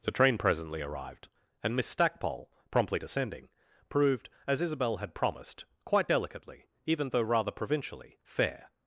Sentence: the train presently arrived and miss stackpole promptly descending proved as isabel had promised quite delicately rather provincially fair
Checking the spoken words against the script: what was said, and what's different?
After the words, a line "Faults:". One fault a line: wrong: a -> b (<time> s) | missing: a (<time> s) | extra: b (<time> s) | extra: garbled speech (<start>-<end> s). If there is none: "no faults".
the train presently arrived and miss stackpole promptly descending proved as isabel had promised quite delicately even though rather provincially fair
Faults:
extra: even though (6.9 s)